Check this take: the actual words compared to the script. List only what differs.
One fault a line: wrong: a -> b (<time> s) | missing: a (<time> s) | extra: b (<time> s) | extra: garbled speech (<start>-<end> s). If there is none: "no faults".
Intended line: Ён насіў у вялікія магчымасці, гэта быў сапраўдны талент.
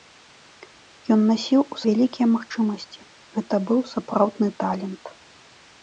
no faults